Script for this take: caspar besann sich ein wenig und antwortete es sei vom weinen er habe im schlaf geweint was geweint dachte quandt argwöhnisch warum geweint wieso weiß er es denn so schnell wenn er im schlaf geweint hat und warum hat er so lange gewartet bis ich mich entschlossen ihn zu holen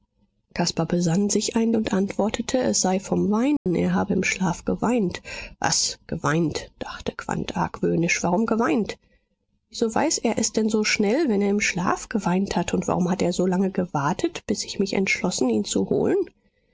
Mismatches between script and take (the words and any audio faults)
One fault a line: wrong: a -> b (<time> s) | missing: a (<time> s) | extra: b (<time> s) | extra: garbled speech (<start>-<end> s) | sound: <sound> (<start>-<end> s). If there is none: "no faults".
missing: wenig (1.8 s)
sound: dropout (3.6-3.7 s)